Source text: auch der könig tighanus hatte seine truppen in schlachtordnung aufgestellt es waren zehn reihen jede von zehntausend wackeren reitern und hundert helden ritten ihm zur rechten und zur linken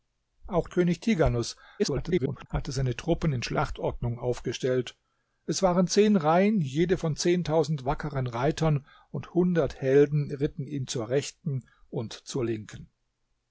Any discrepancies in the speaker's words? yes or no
yes